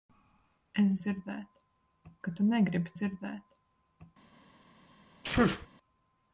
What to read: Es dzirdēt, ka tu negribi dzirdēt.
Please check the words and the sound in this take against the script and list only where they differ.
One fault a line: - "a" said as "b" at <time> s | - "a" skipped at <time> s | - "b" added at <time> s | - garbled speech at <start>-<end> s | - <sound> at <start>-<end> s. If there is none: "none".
- sneeze at 5.2-5.7 s